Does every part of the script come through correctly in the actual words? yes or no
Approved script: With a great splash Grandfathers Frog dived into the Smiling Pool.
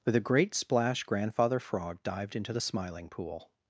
no